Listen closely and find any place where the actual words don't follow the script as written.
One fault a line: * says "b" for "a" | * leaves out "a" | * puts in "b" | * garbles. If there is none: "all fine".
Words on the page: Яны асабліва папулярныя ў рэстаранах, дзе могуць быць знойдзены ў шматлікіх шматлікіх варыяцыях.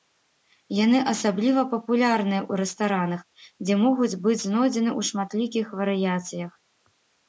* leaves out "шматлікіх"